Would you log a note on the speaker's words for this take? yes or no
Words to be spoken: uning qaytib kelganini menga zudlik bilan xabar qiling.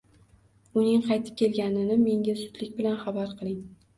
no